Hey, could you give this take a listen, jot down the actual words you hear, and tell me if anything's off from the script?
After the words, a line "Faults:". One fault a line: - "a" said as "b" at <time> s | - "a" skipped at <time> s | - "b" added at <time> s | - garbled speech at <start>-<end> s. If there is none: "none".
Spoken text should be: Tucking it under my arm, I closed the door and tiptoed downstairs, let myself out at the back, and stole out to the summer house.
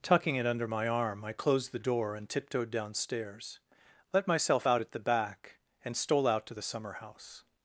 Tucking it under my arm, I closed the door and tiptoed downstairs, let myself out at the back, and stole out to the summer house.
Faults:
none